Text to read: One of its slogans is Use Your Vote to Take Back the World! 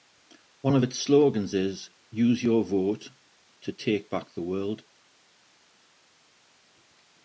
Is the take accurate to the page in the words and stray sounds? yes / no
yes